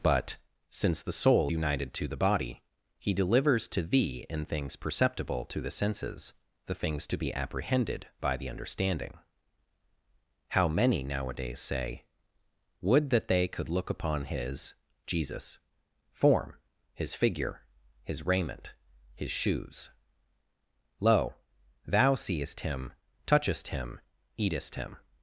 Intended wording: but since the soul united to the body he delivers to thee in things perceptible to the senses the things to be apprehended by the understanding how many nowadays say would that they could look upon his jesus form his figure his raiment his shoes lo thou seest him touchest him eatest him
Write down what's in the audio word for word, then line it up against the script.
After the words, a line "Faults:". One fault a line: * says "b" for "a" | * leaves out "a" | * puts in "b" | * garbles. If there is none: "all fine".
but since the soul united to the body he delivers to thee in things perceptible to the senses the things to be apprehended by the understanding how many nowadays say would that they could look upon his jesus form his figure his raiment his shoes lo thou seest him touchest him eatest him
Faults:
all fine